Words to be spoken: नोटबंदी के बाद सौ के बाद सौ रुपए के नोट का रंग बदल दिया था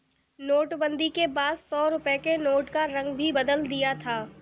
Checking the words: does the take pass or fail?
fail